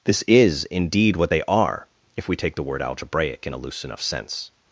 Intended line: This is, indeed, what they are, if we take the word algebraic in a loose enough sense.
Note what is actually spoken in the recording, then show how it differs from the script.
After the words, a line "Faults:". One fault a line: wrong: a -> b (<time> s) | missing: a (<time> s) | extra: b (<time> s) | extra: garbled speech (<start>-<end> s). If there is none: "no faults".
This is, indeed, what they are, if we take the word algebraic in a loose enough sense.
Faults:
no faults